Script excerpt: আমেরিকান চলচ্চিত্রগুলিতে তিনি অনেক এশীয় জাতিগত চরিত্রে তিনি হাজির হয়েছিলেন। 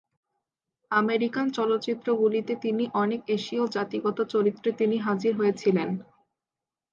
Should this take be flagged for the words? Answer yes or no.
no